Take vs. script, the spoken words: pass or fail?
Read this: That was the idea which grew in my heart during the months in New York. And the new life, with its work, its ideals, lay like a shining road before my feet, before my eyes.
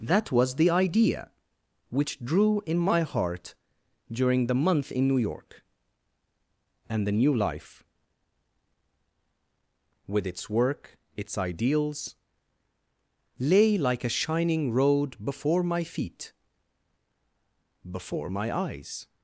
fail